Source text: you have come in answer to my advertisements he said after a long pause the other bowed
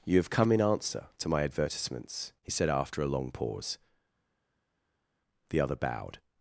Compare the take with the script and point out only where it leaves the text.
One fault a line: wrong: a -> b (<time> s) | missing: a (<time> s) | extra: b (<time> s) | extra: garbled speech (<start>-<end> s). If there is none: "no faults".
no faults